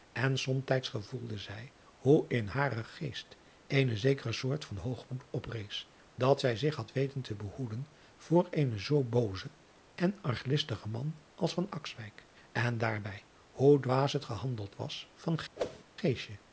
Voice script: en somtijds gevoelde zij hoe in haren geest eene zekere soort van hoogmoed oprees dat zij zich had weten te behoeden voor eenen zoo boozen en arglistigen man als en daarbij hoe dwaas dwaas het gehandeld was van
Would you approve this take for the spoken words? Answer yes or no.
no